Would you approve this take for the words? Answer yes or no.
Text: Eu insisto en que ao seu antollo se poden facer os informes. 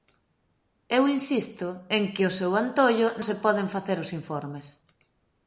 yes